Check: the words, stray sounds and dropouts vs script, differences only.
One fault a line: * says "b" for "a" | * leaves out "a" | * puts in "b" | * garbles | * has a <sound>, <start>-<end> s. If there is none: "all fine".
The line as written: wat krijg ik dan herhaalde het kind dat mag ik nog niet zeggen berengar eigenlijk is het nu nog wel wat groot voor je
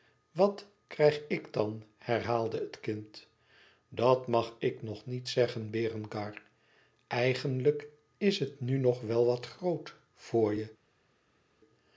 all fine